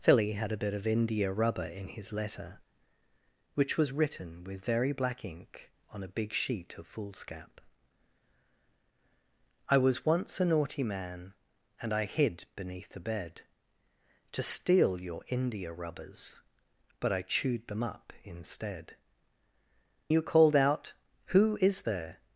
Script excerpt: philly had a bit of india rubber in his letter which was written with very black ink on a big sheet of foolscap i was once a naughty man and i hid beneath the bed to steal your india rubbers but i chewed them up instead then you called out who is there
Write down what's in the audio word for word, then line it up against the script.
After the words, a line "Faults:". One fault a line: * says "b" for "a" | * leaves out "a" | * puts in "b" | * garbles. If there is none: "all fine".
philly had a bit of india rubber in his letter which was written with very black ink on a big sheet of foolscap i was once a naughty man and i hid beneath the bed to steal your india rubbers but i chewed them up instead you called out who is there
Faults:
* leaves out "then"